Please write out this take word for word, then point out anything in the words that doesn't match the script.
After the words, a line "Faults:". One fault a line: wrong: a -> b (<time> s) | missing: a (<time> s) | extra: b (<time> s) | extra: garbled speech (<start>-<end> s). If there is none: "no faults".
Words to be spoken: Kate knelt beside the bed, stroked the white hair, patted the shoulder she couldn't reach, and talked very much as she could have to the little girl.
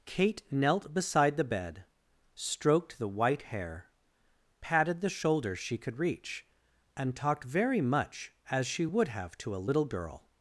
Kate knelt beside the bed, stroked the white hair, patted the shoulder she could reach, and talked very much as she would have to a little girl.
Faults:
wrong: couldn't -> could (5.8 s)
wrong: could -> would (8.9 s)
wrong: the -> a (9.6 s)